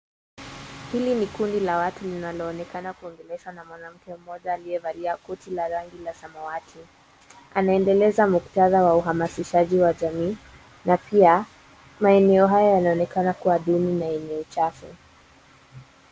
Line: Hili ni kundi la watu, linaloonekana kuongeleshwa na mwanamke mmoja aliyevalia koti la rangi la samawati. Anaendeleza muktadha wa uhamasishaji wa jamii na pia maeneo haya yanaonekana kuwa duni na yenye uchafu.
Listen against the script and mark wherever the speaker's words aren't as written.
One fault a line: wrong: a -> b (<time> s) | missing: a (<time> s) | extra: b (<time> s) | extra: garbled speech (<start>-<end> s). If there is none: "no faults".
no faults